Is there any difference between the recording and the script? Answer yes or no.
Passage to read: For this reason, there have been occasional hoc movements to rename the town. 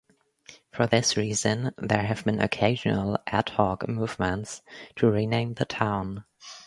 yes